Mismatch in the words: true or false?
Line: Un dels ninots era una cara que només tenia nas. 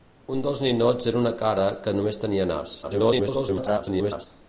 true